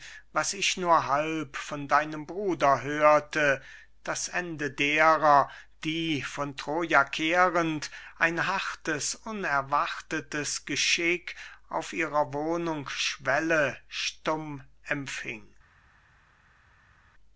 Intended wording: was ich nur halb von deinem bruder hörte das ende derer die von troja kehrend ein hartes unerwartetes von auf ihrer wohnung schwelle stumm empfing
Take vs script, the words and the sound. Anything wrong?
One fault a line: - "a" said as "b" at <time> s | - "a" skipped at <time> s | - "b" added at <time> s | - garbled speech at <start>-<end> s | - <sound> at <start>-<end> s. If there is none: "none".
- "von" said as "geschick" at 10.7 s